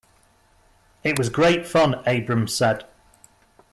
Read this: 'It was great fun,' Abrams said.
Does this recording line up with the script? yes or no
yes